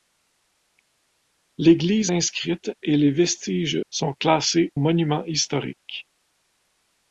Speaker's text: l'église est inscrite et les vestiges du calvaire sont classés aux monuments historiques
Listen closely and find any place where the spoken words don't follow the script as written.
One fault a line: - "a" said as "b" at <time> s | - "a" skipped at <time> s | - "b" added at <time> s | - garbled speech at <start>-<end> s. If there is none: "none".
- "est" skipped at 2.1 s
- "du calvaire" skipped at 3.8 s
- "aux" skipped at 4.7 s